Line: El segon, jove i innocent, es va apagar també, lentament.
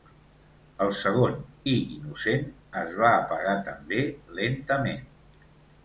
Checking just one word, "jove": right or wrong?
wrong